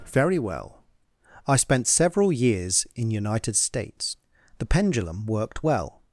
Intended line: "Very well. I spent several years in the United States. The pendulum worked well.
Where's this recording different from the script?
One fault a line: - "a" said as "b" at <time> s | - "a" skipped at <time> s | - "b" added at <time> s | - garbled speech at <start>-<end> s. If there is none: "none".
- "the" skipped at 3.1 s